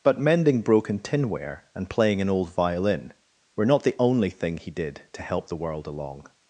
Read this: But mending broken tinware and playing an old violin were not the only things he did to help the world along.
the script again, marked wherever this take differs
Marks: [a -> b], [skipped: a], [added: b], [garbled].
But mending broken tinware and playing an old violin were not the only [things -> thing] he did to help the world along.